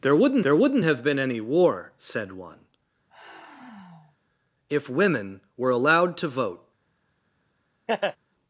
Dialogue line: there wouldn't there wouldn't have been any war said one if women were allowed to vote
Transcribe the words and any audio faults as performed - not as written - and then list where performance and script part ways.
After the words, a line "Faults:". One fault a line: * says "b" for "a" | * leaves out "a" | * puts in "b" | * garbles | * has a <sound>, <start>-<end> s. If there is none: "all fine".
there wouldn't there wouldn't have been any war said one if women were allowed to vote
Faults:
* has a sigh, 3.1-4.2 s
* has a laugh, 7.9-8.2 s